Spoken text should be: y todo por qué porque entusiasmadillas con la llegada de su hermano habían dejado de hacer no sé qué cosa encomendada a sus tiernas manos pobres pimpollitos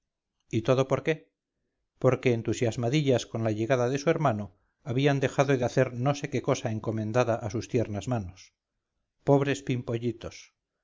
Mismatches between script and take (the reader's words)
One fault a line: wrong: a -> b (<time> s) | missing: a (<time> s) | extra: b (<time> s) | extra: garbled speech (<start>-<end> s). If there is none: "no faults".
no faults